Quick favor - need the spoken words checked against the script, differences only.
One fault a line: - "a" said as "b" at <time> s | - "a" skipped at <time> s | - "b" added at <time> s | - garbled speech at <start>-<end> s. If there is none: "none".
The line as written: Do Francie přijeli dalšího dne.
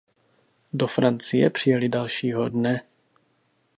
none